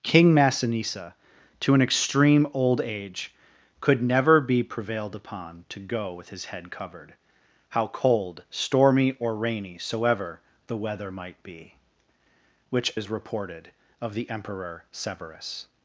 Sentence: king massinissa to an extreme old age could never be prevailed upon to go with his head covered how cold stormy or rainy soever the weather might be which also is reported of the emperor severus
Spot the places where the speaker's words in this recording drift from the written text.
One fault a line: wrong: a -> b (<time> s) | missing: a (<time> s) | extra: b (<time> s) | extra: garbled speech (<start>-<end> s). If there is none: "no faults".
missing: also (12.9 s)